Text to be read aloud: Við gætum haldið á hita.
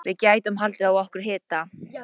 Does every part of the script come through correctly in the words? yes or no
no